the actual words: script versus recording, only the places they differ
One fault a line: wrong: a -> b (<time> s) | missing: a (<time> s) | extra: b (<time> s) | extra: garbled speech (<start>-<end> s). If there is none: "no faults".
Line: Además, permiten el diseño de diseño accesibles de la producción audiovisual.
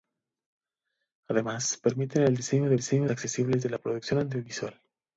no faults